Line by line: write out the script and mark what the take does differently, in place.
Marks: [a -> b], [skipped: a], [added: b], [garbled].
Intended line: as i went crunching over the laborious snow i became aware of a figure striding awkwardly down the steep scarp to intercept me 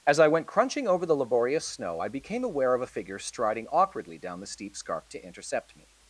as i went crunching over the laborious snow i became aware of a figure striding awkwardly down the steep scarp to intercept me